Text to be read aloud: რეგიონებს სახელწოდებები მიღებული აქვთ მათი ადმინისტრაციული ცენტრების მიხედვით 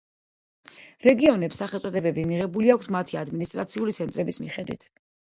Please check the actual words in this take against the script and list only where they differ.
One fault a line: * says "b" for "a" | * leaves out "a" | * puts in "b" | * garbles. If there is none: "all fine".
all fine